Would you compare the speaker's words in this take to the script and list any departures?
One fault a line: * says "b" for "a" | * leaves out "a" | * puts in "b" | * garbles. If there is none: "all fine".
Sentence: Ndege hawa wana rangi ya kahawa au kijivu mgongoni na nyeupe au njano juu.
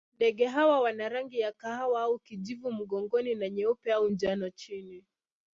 * says "chini" for "juu"